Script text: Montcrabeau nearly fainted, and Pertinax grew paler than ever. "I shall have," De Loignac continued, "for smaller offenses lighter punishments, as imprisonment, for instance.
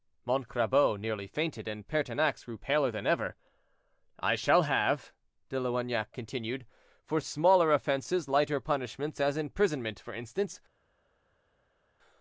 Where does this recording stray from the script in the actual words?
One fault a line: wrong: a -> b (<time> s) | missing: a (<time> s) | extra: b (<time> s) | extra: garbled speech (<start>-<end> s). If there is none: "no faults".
no faults